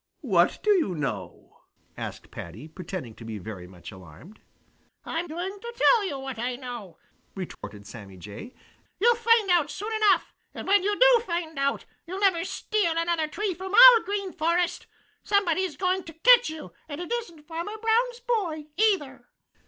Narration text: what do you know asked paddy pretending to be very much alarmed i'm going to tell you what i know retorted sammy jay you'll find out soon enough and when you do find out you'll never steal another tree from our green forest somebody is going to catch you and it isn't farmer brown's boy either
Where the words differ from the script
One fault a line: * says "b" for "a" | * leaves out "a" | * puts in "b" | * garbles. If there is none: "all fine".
all fine